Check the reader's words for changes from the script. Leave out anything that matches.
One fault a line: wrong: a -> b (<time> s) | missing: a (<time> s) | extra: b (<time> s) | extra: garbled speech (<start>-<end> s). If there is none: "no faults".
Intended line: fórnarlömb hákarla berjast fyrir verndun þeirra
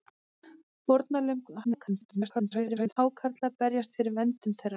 extra: garbled speech (1.6-3.0 s)